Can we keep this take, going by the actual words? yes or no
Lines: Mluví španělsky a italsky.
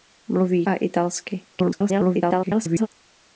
no